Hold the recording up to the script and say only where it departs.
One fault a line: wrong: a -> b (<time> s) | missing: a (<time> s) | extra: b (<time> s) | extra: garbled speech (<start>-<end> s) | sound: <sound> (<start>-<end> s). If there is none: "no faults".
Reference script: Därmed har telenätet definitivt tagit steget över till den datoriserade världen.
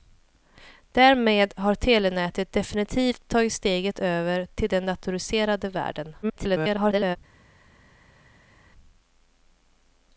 extra: garbled speech (6.2-7.2 s)